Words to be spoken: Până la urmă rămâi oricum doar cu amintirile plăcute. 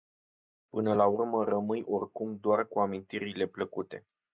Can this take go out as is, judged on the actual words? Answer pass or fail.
pass